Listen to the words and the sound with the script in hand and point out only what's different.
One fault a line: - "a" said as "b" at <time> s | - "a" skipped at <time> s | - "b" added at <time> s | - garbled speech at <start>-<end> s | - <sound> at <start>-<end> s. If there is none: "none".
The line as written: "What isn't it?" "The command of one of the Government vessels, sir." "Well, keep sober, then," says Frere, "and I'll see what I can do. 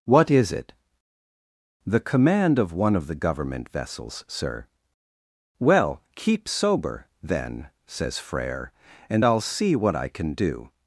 - "isn't" said as "is" at 0.3 s